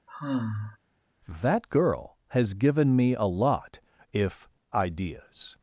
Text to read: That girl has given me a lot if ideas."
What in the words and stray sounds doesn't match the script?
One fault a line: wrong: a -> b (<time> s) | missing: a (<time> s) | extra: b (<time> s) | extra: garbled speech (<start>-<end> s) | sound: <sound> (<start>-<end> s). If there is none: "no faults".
sound: sigh (0.1-0.8 s)